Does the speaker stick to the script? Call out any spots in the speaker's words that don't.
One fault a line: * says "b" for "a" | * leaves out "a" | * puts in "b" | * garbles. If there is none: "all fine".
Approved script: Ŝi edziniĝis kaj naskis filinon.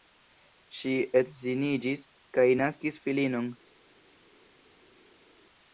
all fine